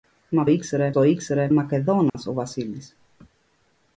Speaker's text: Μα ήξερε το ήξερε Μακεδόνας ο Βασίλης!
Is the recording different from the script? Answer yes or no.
no